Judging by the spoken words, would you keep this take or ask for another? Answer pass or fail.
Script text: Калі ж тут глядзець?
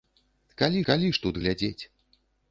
fail